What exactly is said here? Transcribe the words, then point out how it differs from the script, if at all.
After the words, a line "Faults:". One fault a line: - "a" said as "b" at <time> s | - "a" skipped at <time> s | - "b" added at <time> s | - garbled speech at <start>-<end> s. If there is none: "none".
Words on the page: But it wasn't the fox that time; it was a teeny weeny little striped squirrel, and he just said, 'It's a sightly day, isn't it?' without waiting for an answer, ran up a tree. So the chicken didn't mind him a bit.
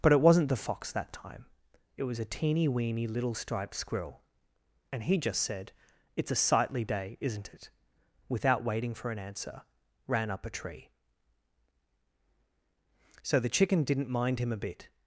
But it wasn't the fox that time; it was a teeny weeny little striped squirrel, and he just said, 'It's a sightly day, isn't it?' without waiting for an answer, ran up a tree. So the chicken didn't mind him a bit.
Faults:
none